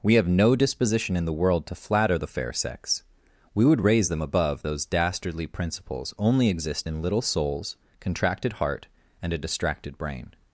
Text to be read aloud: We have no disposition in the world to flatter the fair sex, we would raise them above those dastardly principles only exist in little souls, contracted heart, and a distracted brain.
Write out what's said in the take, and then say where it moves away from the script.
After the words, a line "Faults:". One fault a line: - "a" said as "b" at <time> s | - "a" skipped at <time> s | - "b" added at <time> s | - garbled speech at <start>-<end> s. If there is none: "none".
We have no disposition in the world to flatter the fair sex, we would raise them above those dastardly principles only exist in little souls, contracted heart, and a distracted brain.
Faults:
none